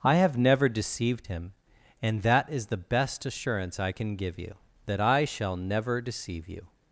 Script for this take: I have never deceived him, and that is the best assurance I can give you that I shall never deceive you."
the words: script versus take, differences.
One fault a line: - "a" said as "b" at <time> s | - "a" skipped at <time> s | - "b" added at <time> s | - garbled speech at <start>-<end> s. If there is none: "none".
none